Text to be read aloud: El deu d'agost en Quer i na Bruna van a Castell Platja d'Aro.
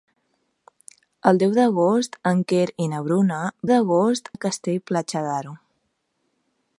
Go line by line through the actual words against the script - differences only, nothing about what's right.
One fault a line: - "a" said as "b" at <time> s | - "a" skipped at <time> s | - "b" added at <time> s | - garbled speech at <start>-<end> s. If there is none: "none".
- "van" said as "d'agost" at 3.7 s